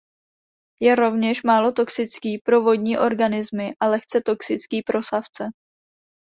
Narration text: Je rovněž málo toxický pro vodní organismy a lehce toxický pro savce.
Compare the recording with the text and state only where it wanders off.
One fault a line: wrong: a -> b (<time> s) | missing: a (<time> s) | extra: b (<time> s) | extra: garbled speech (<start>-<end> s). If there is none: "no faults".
no faults